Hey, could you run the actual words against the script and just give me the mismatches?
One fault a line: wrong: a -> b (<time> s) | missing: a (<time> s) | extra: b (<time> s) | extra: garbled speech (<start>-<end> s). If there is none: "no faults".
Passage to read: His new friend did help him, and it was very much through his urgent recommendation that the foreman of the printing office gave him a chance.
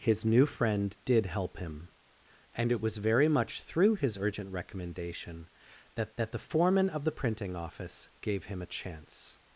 extra: that (6.1 s)